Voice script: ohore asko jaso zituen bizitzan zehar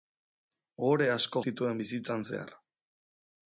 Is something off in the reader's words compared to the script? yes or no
yes